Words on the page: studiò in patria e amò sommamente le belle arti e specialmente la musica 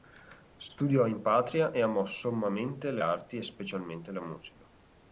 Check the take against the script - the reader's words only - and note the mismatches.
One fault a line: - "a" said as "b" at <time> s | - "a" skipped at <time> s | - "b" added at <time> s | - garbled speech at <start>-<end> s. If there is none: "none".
- "belle" skipped at 3.0 s